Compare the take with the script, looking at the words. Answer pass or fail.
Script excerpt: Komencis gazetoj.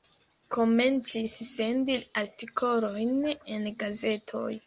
fail